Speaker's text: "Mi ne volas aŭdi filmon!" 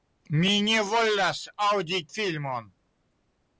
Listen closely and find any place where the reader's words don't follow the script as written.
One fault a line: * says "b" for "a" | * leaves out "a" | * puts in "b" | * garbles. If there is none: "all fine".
all fine